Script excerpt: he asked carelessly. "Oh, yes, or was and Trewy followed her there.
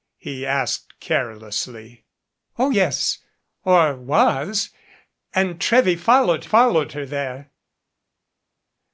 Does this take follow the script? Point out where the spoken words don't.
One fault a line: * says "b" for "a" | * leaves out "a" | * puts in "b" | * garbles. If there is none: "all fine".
* puts in "followed"